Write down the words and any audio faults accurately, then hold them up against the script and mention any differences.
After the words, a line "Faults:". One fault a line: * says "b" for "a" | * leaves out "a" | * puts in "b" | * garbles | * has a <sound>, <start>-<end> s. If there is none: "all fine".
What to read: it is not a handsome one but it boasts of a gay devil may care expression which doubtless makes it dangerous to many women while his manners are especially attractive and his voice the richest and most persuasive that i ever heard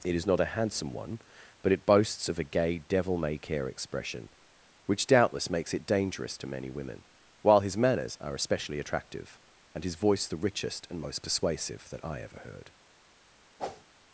it is not a handsome one but it boasts of a gay devil may care expression which doubtless makes it dangerous to many women while his manners are especially attractive and his voice the richest and most persuasive that i ever heard
Faults:
* has a whoosh, 13.6-13.8 s